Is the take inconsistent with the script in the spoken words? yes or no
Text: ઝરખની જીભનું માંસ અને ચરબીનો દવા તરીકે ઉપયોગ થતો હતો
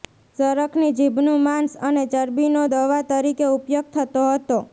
no